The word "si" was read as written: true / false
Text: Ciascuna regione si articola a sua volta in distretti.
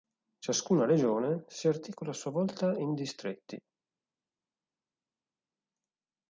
true